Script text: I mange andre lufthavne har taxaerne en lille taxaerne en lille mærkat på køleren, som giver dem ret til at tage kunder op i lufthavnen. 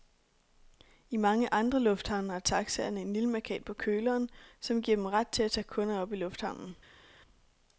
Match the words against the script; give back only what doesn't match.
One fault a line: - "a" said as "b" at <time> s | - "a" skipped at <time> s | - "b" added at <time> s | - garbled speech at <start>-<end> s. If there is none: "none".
- "taxaerne en lille" skipped at 3.3 s